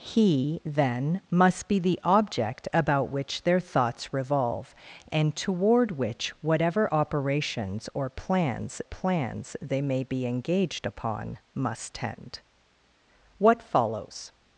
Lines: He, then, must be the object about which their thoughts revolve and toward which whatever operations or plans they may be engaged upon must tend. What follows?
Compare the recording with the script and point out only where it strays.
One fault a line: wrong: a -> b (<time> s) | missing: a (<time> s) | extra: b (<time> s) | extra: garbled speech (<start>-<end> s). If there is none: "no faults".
extra: plans (8.8 s)